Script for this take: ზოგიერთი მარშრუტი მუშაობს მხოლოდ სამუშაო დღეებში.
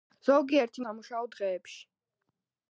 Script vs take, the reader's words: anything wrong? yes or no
yes